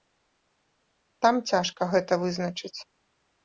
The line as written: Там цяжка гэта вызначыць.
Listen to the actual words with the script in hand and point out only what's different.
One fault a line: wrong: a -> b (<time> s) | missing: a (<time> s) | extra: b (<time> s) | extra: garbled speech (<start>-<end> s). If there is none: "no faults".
no faults